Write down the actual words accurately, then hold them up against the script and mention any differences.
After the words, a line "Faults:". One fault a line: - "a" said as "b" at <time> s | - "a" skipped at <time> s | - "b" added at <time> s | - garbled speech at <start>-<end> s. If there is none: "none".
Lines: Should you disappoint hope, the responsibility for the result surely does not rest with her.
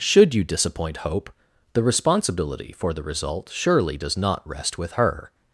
Should you disappoint hope, the responsibility for the result surely does not rest with her.
Faults:
none